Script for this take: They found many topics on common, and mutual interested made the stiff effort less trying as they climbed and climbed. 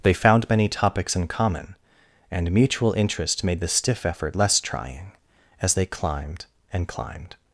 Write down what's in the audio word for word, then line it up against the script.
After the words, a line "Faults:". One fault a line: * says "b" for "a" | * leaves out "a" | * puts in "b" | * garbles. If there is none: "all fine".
They found many topics in common, and mutual interest made the stiff effort less trying as they climbed and climbed.
Faults:
* says "in" for "on"
* says "interest" for "interested"